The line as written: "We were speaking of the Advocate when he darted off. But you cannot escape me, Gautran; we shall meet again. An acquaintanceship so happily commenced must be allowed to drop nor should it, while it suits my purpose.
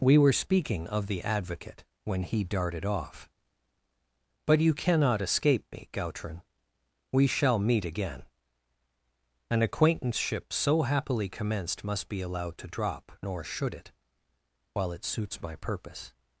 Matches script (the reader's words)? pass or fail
pass